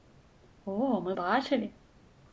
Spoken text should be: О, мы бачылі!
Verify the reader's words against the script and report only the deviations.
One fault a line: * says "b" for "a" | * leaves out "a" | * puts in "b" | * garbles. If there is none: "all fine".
all fine